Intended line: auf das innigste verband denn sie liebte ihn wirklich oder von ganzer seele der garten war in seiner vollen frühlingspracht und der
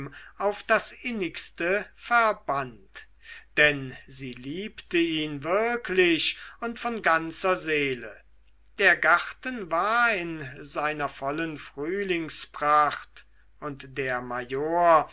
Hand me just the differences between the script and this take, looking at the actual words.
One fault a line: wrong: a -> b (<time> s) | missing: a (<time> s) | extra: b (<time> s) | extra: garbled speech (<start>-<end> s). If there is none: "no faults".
wrong: oder -> und (6.6 s)